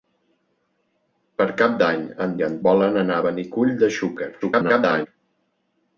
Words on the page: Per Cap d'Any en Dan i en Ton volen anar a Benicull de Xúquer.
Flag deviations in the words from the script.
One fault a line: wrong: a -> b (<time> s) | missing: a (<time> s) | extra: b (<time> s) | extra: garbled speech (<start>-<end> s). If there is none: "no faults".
missing: Dan (2.3 s)
missing: Ton (2.5 s)
extra: garbled speech (4.4-5.1 s)